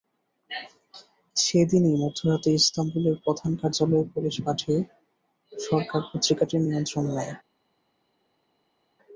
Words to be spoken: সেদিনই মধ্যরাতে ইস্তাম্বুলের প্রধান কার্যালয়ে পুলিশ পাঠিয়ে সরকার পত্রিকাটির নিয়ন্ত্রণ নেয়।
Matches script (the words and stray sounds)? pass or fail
pass